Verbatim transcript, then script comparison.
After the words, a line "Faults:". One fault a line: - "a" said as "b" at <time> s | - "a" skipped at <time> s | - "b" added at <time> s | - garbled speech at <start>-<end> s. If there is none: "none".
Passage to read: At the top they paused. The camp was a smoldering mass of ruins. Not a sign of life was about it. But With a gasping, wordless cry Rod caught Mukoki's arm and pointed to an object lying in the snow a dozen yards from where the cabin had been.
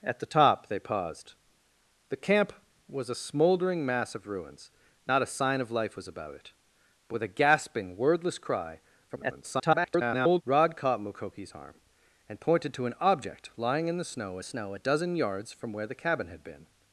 At the top they paused. The camp was a smoldering mass of ruins. Not a sign of life was about it. But With a gasping, wordless cry [garbled] Rod caught Mukoki's arm and pointed to an object lying in the snow snow a dozen yards from where the cabin had been.
Faults:
- garbled speech at 9.1-10.4 s
- "snow" added at 14.4 s